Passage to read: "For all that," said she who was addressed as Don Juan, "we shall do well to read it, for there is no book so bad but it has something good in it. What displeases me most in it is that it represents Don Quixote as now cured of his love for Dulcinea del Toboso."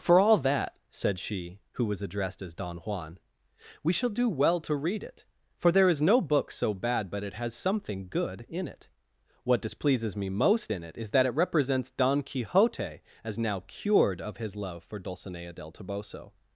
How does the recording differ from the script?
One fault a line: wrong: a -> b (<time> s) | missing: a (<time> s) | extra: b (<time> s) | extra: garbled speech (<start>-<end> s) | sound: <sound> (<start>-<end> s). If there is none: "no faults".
no faults